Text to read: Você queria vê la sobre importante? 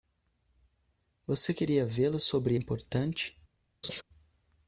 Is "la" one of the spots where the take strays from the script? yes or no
no